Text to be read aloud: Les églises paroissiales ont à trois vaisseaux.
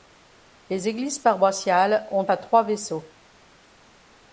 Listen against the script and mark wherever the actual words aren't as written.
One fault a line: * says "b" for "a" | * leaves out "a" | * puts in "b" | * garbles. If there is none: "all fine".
all fine